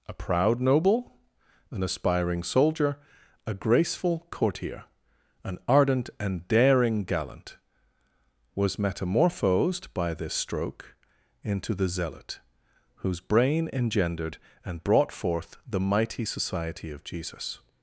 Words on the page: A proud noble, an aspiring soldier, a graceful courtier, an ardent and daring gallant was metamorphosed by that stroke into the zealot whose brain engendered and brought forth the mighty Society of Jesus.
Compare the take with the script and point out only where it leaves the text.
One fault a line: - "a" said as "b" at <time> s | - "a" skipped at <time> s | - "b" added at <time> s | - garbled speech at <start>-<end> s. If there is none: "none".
- "that" said as "this" at 10.1 s